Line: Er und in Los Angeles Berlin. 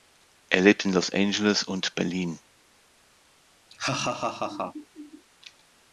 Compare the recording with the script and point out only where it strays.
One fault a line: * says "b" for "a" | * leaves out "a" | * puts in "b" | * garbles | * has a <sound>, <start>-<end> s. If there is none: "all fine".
* says "lebt" for "und"
* puts in "und"
* has a laugh, 3.7-5.2 s